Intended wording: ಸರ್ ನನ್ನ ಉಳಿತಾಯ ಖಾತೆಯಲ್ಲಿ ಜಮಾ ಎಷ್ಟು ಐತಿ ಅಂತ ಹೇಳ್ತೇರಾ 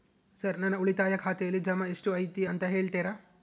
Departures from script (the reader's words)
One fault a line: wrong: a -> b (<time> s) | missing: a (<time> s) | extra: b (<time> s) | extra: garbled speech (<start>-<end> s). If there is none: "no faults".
no faults